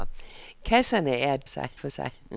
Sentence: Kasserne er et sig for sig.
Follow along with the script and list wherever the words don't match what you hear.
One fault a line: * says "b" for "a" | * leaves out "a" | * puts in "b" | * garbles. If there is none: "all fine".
all fine